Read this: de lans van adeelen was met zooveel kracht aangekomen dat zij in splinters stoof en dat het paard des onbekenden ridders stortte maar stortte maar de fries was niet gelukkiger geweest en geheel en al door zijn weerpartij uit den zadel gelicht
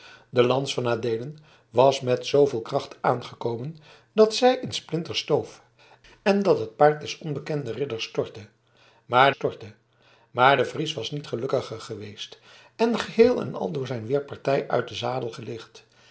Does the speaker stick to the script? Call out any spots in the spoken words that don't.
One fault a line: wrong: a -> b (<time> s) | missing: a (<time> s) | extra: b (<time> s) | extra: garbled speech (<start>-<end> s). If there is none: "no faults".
no faults